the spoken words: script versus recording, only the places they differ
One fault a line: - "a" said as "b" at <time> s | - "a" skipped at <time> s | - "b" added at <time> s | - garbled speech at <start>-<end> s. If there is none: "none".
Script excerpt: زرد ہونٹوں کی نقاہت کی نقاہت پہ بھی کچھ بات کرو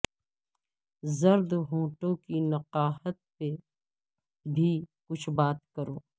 - "کی نقاہت" skipped at 3.1 s